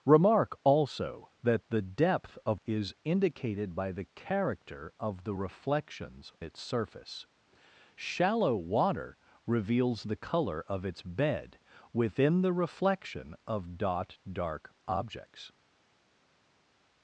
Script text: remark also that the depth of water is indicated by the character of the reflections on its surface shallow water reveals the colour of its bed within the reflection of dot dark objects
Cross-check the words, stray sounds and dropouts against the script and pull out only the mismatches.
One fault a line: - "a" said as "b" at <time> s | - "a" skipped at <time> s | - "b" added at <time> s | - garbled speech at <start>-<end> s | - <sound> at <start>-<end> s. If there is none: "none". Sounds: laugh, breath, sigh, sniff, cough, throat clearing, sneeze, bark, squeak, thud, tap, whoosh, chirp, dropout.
- "water" skipped at 2.6 s
- "on" skipped at 6.3 s